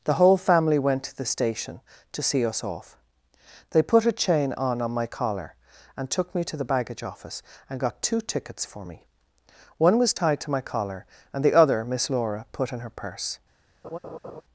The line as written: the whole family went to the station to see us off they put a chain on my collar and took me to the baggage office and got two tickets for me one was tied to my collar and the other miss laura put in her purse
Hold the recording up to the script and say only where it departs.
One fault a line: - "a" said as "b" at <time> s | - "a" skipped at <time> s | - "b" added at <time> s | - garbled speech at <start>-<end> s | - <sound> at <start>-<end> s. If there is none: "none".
- "on" added at 4.8 s
- laugh at 13.8-14.4 s